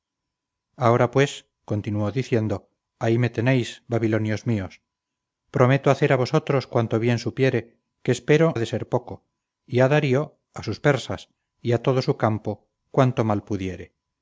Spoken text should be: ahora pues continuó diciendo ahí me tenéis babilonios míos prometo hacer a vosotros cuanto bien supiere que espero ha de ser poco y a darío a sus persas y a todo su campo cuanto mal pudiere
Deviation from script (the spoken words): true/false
false